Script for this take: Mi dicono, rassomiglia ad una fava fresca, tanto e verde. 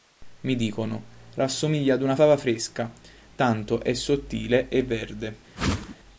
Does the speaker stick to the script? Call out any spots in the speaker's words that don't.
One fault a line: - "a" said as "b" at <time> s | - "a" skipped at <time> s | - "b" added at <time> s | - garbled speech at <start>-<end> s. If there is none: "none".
- "è sottile" added at 3.8 s